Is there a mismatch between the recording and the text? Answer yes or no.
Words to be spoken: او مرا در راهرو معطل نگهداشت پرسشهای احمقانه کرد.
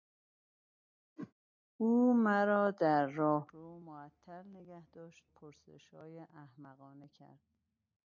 no